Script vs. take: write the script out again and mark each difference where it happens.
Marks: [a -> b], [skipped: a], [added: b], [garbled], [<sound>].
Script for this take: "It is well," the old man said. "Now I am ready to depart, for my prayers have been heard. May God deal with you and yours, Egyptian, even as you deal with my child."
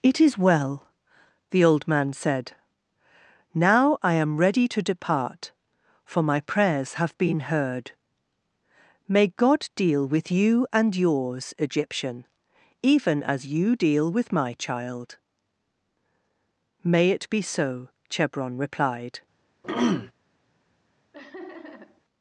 "It is well," the old man said. "Now I am ready to depart, for my prayers have been heard. May God deal with you and yours, Egyptian, even as you deal with my child." [added: May it be so Chebron replied] [throat clearing] [laugh]